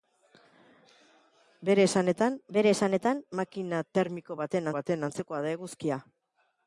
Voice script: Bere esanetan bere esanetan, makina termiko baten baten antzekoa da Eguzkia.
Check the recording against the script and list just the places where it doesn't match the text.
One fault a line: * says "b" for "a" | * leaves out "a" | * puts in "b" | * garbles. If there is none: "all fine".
all fine